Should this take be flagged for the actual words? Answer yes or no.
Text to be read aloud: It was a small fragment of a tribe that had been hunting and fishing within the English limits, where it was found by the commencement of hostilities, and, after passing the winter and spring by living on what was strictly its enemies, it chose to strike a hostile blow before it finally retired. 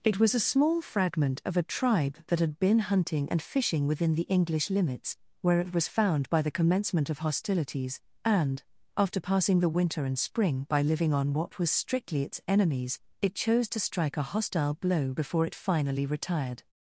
no